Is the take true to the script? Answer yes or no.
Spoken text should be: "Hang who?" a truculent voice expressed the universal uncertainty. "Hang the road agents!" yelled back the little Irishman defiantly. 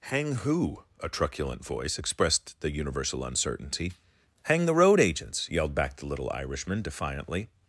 yes